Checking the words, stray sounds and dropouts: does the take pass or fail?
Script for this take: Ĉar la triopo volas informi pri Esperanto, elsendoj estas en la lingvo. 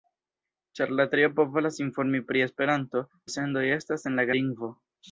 pass